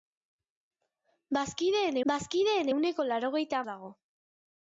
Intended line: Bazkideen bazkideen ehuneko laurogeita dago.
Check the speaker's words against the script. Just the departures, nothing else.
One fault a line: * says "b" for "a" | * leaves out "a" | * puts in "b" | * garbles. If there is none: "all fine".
all fine